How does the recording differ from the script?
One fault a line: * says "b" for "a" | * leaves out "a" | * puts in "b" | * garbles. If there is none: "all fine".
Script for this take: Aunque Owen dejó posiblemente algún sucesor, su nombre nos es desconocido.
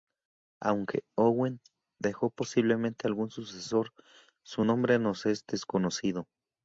all fine